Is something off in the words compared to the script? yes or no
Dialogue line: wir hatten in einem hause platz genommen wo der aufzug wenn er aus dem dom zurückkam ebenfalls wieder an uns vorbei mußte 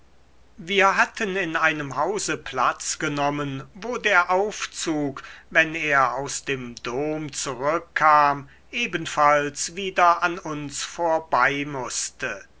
no